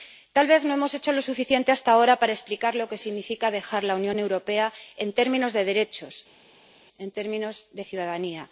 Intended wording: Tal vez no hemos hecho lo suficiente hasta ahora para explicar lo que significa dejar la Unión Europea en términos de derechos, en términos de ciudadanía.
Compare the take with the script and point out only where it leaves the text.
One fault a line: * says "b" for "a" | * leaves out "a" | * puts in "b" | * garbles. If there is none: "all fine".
all fine